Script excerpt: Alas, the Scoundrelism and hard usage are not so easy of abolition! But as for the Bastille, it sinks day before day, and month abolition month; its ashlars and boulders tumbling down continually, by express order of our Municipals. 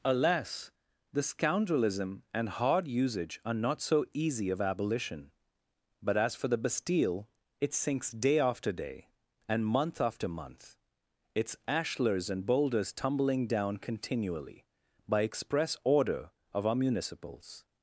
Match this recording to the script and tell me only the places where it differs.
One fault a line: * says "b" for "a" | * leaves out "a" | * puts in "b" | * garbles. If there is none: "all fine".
* says "after" for "before"
* says "after" for "abolition"